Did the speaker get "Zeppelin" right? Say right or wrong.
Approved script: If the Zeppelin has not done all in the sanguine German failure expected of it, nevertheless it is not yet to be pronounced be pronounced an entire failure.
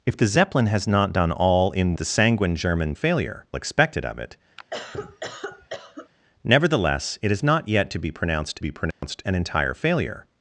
right